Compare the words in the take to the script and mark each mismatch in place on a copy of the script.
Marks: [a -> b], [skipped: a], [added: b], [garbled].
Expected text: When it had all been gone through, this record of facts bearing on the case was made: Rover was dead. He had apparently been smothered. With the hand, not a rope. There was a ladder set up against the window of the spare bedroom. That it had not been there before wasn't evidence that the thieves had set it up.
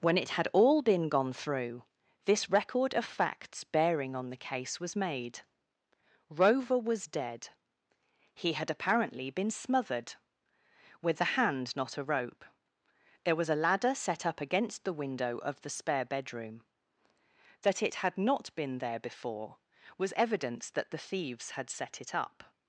When it had all been gone through, this record of facts bearing on the case was made: Rover was dead. He had apparently been smothered. With the hand, not a rope. There was a ladder set up against the window of the spare bedroom. That it had not been there before [wasn't -> was] evidence that the thieves had set it up.